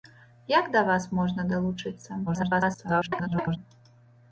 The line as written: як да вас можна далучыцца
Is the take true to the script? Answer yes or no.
no